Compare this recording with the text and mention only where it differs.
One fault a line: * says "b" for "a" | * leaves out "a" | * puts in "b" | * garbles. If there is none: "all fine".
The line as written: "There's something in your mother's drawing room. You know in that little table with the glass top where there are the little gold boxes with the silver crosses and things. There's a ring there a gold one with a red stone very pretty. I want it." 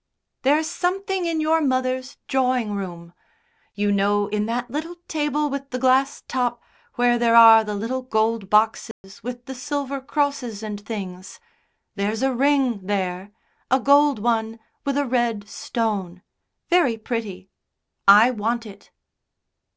all fine